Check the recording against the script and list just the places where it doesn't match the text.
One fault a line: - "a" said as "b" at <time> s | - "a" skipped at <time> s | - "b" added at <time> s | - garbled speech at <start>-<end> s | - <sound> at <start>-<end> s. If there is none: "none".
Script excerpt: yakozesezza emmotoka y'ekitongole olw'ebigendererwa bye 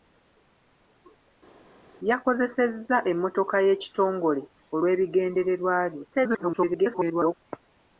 - garbled speech at 6.1-7.3 s